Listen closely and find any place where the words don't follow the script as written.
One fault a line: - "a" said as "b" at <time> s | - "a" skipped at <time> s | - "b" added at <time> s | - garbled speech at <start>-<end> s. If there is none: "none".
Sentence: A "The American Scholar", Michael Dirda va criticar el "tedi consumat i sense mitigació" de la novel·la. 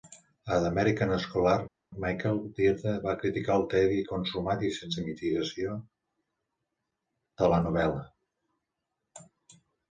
none